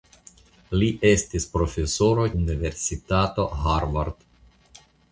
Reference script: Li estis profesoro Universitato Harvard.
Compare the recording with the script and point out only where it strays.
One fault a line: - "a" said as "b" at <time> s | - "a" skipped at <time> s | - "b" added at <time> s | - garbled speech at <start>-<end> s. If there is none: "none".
none